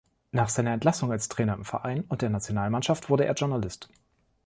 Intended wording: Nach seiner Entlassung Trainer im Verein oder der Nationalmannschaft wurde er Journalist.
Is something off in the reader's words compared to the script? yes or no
yes